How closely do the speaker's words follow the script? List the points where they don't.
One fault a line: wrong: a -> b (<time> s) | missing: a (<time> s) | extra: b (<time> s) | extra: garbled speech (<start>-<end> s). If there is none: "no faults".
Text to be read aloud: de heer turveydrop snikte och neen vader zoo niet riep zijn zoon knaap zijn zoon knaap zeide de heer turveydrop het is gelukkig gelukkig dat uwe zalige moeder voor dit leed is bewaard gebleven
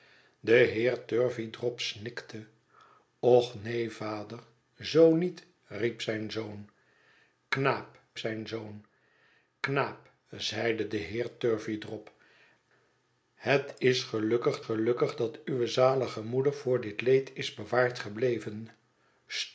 no faults